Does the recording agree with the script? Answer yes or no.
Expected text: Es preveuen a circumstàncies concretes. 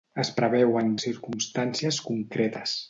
yes